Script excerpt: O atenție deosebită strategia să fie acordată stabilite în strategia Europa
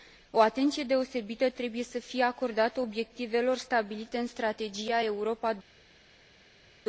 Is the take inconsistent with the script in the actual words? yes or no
yes